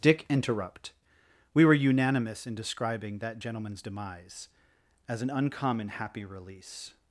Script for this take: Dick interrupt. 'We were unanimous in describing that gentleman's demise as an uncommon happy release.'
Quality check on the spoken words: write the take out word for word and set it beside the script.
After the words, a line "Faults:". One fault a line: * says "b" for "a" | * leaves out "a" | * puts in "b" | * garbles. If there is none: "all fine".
Dick interrupt. 'We were unanimous in describing that gentleman's demise as an uncommon happy release.'
Faults:
all fine